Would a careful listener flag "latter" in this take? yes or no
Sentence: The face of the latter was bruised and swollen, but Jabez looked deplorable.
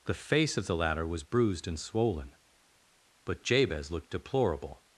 no